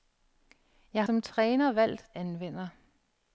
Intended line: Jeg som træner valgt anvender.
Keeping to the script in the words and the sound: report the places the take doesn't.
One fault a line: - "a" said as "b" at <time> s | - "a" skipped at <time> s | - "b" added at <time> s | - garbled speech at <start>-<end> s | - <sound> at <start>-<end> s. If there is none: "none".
none